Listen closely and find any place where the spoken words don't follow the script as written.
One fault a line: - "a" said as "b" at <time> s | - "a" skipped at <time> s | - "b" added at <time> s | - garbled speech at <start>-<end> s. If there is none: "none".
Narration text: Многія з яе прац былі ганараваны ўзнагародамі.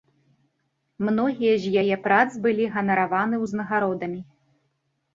none